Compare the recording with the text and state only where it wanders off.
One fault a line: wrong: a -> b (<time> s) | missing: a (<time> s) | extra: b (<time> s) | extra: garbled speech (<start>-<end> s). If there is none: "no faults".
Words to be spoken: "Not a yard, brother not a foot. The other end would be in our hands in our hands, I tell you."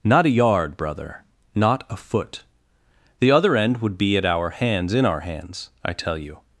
wrong: in -> at (4.2 s)